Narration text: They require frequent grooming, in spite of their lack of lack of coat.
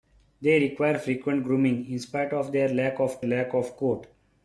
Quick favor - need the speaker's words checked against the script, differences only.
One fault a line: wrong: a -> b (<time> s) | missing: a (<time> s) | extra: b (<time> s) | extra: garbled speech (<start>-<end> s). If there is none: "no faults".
no faults